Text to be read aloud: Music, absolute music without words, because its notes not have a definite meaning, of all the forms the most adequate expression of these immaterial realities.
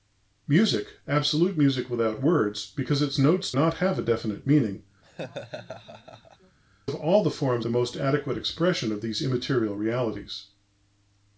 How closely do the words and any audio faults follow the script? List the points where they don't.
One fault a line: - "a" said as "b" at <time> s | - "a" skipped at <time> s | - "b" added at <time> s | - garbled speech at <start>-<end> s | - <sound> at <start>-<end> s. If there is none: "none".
- laugh at 5.0-6.6 s